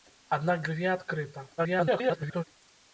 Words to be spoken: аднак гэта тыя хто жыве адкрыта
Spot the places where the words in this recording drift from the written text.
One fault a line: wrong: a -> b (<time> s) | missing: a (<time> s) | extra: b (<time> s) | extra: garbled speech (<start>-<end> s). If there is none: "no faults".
missing: гэта тыя хто (0.6 s)
extra: garbled speech (1.6-2.4 s)